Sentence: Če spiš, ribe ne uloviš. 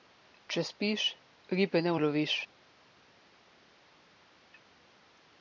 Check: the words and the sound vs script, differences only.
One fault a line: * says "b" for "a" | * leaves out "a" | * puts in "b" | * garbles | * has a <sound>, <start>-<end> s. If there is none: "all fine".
all fine